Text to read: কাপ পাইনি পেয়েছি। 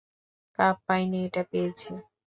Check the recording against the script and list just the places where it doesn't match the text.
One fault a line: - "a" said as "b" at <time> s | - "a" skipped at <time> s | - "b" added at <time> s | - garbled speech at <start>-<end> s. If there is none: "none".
- "এটা" added at 1.3 s